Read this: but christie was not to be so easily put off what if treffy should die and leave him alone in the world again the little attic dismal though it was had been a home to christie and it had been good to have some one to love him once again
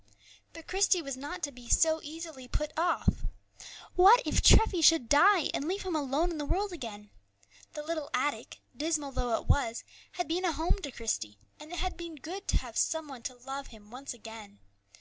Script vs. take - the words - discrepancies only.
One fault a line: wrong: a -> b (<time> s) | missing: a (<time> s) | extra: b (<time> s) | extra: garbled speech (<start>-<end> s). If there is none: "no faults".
no faults